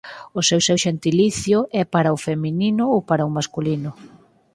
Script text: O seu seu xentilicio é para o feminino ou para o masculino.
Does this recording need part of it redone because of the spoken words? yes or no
no